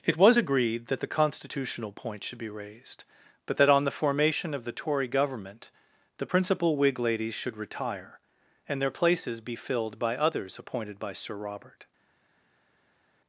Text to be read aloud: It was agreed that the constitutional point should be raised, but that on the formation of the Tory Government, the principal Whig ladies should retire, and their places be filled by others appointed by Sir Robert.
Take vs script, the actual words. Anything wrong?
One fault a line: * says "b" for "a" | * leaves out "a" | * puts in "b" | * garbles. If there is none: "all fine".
all fine